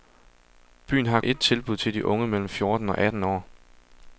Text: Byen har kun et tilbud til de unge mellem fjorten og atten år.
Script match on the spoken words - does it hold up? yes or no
no